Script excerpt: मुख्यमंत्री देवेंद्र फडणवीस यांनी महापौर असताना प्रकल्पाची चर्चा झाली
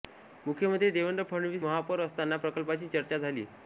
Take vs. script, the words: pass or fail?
fail